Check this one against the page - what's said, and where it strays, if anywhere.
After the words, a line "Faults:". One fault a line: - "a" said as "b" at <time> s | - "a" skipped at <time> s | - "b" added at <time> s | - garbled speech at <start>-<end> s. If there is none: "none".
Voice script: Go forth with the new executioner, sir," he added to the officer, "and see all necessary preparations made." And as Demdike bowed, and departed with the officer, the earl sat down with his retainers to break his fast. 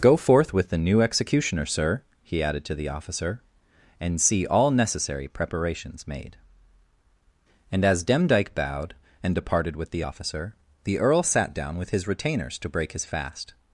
Go forth with the new executioner, sir," he added to the officer, "and see all necessary preparations made." And as Demdike bowed, and departed with the officer, the earl sat down with his retainers to break his fast.
Faults:
none